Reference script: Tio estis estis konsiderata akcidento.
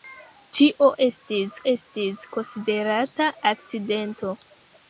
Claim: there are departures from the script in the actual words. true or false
false